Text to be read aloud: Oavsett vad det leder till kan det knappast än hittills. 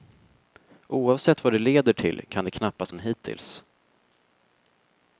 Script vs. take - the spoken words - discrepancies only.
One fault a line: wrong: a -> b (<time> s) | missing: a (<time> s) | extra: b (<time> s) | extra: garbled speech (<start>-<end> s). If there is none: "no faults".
no faults